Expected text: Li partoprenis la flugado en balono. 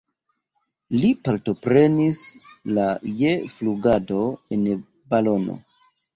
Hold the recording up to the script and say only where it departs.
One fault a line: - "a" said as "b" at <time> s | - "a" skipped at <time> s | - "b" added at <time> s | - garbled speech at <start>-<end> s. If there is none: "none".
- "je" added at 3.2 s